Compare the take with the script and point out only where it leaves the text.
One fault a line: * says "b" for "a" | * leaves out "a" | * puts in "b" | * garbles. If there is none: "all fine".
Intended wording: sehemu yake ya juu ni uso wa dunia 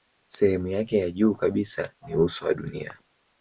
* puts in "kabisa"